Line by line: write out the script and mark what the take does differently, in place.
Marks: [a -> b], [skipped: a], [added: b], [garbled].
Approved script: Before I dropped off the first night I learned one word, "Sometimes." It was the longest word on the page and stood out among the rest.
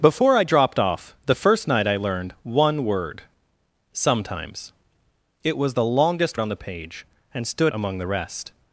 Before I dropped off the first night I learned one word, "Sometimes." It was the longest [skipped: word] on the page and stood [skipped: out] among the rest.